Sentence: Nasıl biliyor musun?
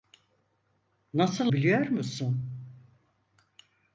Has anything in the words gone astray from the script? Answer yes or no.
no